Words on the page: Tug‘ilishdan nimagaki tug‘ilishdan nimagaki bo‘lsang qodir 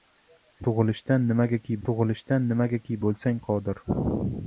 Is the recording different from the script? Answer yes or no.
no